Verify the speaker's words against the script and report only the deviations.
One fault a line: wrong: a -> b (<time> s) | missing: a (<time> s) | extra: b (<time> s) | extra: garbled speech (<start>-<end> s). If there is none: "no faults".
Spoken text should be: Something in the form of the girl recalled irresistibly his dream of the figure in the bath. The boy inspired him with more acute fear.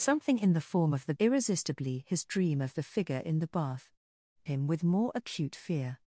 missing: girl recalled (1.1 s)
missing: The boy inspired (3.9 s)